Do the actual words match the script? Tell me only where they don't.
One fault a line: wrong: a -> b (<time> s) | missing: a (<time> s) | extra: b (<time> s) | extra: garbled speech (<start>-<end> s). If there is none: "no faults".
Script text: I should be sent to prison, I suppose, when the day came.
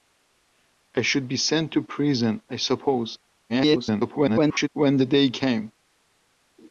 extra: garbled speech (3.5-4.7 s)